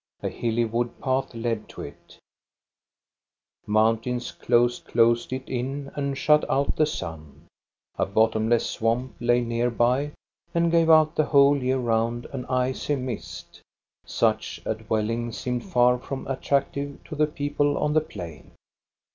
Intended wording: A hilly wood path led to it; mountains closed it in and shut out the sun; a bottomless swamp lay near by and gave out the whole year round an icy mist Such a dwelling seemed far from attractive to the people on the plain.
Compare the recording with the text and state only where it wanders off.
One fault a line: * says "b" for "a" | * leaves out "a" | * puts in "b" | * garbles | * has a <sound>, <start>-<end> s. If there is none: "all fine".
* puts in "closed"